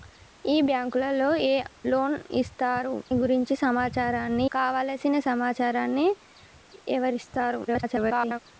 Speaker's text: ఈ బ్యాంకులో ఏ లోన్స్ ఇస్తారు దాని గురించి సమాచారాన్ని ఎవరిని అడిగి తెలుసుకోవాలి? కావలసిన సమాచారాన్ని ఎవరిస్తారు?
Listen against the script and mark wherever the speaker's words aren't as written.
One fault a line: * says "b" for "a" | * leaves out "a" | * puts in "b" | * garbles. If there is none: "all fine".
* leaves out "దాని"
* leaves out "ఎవరిని అడిగి తెలుసుకోవాలి"
* garbles